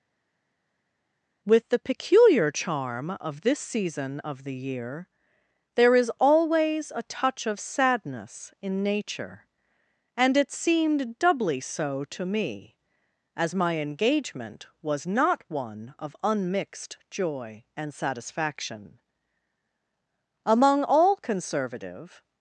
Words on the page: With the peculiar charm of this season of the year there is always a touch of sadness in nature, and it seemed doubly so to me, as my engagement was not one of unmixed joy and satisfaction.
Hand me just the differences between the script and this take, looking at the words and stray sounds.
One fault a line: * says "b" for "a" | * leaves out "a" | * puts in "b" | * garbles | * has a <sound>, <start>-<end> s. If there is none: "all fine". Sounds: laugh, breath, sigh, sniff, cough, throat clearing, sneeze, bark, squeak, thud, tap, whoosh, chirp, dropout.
* puts in "Among all conservative"